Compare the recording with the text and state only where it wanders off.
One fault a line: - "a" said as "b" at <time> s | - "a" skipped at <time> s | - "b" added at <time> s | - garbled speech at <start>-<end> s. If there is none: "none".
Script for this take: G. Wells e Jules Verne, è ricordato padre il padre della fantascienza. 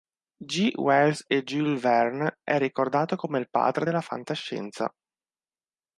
- "padre" said as "come" at 3.2 s